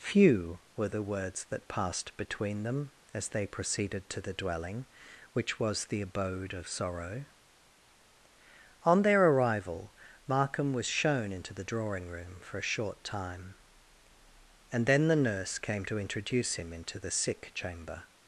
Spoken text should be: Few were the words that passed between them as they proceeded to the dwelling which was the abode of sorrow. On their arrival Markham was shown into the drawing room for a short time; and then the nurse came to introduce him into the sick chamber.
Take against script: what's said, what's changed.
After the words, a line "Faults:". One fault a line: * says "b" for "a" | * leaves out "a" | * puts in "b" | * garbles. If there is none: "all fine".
Few were the words that passed between them as they proceeded to the dwelling which was the abode of sorrow. On their arrival Markham was shown into the drawing room for a short time; and then the nurse came to introduce him into the sick chamber.
Faults:
all fine